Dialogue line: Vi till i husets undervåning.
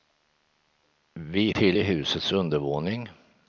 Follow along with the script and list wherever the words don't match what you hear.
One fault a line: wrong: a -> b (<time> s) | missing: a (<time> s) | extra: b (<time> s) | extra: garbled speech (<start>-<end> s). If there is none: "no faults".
no faults